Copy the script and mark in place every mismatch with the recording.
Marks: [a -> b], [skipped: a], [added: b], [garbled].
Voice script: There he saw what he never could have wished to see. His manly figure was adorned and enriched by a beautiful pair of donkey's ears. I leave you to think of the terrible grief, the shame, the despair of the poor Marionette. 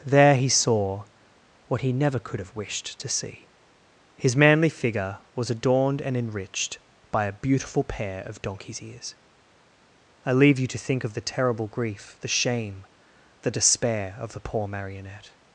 There he saw what he never could have wished to see. His manly figure was adorned and enriched by a beautiful pair of donkey's ears. I leave you to think of the terrible grief, the shame, the despair of the poor Marionette.